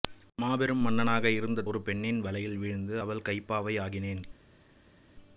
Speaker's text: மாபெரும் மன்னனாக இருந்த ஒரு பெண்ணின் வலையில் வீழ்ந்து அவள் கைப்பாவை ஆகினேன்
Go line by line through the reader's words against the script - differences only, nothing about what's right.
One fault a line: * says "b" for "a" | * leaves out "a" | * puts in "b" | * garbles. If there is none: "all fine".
all fine